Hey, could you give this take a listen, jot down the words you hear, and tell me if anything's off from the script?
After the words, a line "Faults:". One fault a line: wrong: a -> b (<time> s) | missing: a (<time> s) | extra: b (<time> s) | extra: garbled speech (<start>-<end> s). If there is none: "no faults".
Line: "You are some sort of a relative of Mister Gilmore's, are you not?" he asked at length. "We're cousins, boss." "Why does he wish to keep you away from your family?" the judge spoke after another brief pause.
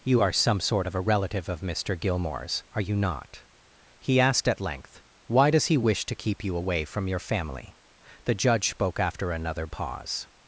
"You are some sort of a relative of Mister Gilmore's, are you not?" he asked at length." ""Why does he wish to keep you away from your family?" the judge spoke after another pause.
Faults:
missing: We're cousins boss (5.0 s)
missing: brief (9.7 s)